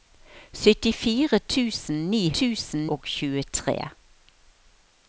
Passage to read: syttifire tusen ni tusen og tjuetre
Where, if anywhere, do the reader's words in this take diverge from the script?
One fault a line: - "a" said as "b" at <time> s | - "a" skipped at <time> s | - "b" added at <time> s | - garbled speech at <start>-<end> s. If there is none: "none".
none